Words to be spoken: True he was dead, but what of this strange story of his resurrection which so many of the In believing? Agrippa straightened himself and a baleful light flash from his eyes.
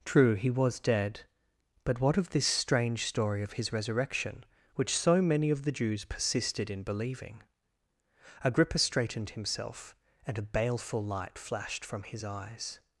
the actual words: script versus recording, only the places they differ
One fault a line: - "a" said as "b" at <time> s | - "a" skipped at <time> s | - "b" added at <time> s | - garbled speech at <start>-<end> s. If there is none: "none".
- "Jews persisted" added at 5.7 s
- "flash" said as "flashed" at 11.4 s